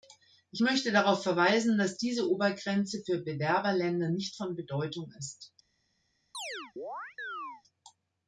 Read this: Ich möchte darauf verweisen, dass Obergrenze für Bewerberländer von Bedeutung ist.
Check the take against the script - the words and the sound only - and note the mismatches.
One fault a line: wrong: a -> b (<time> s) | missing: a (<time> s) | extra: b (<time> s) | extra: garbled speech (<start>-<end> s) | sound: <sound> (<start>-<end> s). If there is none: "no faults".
extra: diese (2.0 s)
extra: nicht (4.1 s)
sound: chirp (6.3-7.6 s)